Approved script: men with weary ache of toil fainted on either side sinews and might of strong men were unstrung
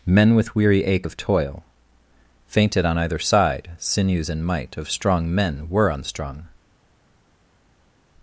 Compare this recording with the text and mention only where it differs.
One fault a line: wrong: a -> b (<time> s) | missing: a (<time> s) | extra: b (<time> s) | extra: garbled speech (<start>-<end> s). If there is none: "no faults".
no faults